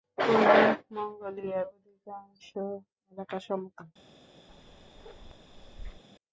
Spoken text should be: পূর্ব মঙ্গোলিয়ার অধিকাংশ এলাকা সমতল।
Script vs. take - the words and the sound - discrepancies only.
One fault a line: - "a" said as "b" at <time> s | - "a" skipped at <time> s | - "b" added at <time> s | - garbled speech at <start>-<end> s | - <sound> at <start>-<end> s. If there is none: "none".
- bark at 4.5-6.0 s